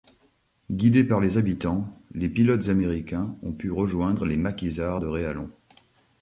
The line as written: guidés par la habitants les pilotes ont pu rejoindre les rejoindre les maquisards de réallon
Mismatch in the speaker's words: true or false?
true